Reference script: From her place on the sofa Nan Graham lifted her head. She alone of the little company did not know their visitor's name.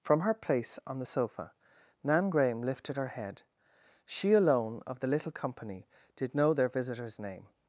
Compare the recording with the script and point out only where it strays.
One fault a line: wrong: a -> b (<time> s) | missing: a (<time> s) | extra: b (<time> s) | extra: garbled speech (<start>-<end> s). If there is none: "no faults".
missing: not (6.3 s)